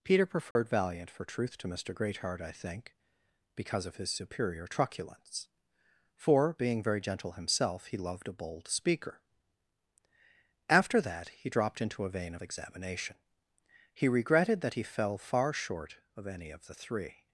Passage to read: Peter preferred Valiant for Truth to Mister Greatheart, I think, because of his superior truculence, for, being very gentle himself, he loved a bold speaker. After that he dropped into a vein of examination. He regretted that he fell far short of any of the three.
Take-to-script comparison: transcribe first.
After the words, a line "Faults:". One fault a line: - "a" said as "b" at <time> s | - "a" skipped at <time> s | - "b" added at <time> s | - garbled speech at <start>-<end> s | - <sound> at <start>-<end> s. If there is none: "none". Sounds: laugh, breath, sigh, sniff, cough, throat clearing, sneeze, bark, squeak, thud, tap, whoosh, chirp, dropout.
Peter preferred Valiant for Truth to Mister Greatheart, I think, because of his superior truculence, for, being very gentle himself, he loved a bold speaker. After that he dropped into a vein of examination. He regretted that he fell far short of any of the three.
Faults:
- dropout at 0.5-0.6 s